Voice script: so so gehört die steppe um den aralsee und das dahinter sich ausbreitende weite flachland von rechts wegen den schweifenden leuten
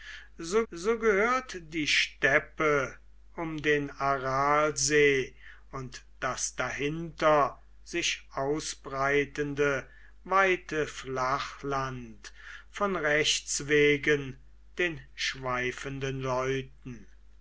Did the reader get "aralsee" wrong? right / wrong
right